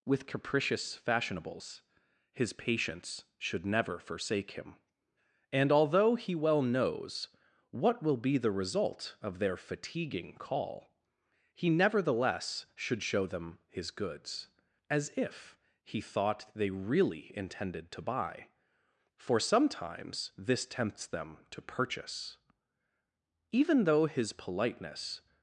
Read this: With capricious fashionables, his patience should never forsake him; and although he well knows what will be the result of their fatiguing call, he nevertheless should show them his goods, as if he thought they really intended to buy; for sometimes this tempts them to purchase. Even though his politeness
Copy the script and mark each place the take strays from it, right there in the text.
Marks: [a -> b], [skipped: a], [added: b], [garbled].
With capricious fashionables, his patience should never forsake him; and although he well knows what will be the result of their fatiguing call, he nevertheless should show them his goods, as if he thought they really intended to buy; for sometimes this tempts them to purchase. Even though his politeness